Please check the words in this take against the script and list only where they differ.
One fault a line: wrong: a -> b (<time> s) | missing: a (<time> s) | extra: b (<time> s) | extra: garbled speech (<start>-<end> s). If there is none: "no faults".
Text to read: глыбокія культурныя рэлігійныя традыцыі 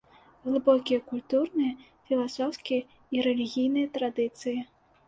extra: філасофскія і (2.1 s)